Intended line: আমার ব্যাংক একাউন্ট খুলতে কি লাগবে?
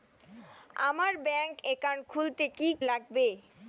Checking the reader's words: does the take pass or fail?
pass